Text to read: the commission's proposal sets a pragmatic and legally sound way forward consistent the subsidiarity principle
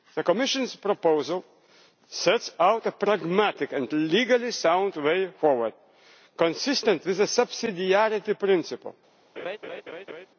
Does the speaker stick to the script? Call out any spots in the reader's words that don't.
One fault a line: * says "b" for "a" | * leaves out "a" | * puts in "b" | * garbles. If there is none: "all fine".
* puts in "out"
* puts in "with"